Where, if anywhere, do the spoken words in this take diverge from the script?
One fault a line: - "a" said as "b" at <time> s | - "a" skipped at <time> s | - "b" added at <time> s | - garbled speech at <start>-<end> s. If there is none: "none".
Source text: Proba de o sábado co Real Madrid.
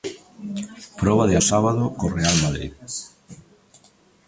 none